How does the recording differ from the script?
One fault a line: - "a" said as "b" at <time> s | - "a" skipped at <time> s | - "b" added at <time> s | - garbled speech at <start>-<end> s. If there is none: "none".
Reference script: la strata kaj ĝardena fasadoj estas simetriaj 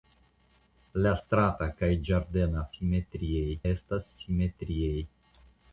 - "fasadoj" said as "simetriaj" at 2.7 s